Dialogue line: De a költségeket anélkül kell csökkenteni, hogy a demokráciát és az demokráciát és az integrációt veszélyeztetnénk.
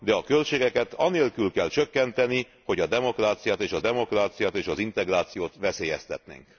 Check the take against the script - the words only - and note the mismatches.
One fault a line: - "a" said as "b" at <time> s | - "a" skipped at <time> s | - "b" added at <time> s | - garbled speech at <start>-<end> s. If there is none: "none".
none